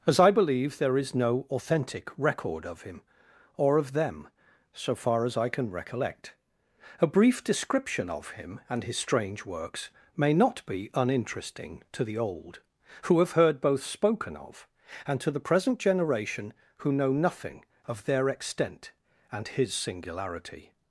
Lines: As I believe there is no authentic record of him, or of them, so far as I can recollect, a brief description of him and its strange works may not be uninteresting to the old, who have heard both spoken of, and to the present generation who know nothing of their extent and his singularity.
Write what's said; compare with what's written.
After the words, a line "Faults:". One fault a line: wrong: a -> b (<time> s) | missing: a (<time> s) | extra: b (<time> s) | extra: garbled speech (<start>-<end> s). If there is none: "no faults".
As I believe there is no authentic record of him, or of them, so far as I can recollect, a brief description of him and his strange works may not be uninteresting to the old, who have heard both spoken of, and to the present generation who know nothing of their extent and his singularity.
Faults:
wrong: its -> his (8.8 s)